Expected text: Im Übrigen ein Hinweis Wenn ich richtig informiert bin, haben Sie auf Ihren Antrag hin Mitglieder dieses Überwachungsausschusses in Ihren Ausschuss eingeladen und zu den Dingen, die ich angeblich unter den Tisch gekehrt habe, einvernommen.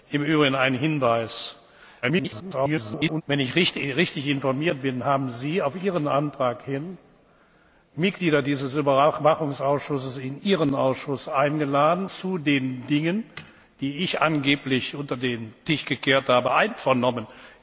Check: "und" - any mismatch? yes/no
yes